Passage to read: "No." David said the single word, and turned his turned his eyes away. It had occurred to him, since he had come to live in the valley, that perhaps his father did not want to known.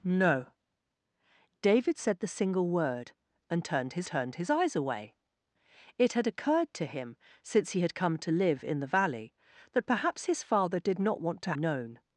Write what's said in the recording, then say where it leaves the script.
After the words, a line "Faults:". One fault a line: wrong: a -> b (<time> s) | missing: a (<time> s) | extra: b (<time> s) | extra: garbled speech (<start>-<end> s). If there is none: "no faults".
"No." David said the single word, and turned his turned his eyes away. It had occurred to him, since he had come to live in the valley, that perhaps his father did not want to known.
Faults:
no faults